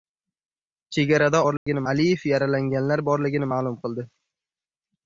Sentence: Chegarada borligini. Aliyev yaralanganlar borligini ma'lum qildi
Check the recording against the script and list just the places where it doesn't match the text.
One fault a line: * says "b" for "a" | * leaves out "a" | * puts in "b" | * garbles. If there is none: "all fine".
all fine